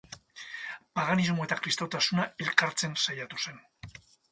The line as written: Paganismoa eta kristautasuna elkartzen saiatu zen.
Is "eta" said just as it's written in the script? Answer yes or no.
yes